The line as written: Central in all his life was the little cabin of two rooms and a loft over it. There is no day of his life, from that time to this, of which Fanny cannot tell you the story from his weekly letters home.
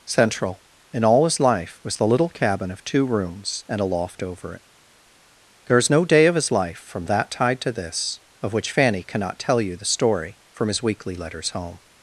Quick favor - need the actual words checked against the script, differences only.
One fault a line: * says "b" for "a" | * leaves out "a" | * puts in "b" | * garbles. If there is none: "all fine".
* says "tide" for "time"